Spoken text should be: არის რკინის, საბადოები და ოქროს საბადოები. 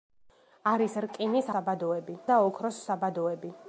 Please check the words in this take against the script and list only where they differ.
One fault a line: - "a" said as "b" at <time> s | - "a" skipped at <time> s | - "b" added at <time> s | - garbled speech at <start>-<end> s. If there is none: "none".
none